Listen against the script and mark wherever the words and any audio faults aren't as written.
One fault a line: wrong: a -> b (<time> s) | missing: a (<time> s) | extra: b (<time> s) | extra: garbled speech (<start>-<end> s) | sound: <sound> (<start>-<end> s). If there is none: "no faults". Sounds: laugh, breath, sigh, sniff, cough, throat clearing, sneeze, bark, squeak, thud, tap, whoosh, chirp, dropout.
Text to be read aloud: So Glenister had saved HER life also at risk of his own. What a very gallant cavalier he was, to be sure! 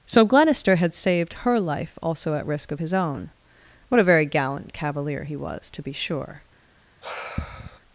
sound: sigh (7.0-7.8 s)